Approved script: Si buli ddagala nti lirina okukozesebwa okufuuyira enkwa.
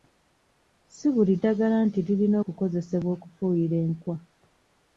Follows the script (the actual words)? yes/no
yes